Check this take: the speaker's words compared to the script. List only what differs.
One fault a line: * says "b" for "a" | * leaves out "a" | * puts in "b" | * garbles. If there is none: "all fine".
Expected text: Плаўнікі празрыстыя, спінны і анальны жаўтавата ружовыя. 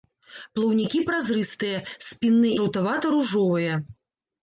* leaves out "і анальны"